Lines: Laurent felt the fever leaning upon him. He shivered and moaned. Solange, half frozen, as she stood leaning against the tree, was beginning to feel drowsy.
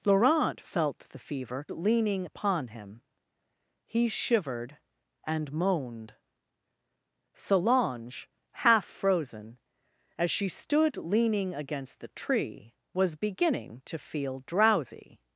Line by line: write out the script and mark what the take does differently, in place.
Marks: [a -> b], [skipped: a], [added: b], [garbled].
Laurent felt the fever leaning upon him. He shivered and moaned. Solange, half frozen, as she stood leaning against the tree, was beginning to feel drowsy.